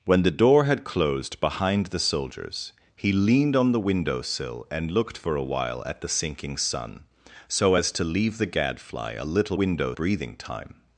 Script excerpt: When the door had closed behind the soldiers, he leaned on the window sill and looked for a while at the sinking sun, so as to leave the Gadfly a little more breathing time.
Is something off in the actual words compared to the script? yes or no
yes